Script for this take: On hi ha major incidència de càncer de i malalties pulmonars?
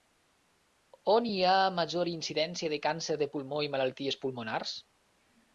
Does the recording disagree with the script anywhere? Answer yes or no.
yes